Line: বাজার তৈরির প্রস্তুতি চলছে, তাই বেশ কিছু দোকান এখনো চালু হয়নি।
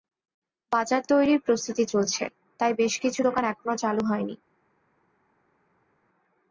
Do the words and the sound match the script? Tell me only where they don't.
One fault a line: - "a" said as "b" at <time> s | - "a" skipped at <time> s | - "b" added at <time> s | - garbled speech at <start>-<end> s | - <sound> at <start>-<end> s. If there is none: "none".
none